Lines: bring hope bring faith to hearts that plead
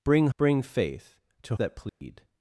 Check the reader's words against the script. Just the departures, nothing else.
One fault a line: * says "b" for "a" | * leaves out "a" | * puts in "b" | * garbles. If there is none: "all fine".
* leaves out "hope"
* leaves out "hearts"